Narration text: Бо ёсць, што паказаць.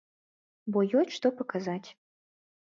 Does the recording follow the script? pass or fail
pass